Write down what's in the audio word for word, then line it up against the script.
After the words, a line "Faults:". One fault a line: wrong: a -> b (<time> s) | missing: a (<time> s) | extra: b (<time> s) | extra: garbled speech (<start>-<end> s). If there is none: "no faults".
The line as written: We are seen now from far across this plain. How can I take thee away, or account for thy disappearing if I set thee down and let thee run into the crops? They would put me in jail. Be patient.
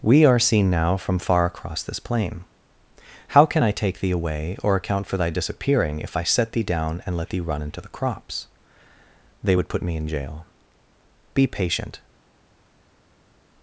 We are seen now from far across this plain. How can I take thee away, or account for thy disappearing if I set thee down and let thee run into the crops? They would put me in jail. Be patient.
Faults:
no faults